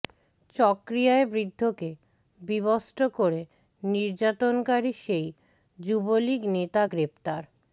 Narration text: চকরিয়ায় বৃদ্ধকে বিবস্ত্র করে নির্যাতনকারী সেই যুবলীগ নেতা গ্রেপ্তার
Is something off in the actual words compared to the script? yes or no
no